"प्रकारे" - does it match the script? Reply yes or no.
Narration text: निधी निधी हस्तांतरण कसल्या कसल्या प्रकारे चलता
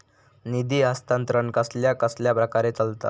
yes